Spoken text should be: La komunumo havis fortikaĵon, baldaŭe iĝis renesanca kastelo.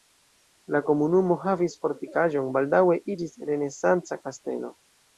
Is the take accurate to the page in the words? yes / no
yes